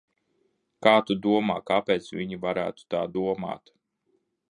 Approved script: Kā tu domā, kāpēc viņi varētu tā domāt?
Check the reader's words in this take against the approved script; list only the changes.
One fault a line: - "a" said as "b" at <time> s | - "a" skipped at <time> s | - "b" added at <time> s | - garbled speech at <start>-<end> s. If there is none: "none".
none